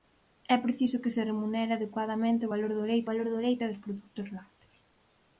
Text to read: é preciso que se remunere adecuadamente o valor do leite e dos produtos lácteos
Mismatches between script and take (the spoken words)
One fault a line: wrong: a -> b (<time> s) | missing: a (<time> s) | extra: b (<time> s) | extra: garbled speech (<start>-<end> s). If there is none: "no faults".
extra: valor do leite (3.1 s)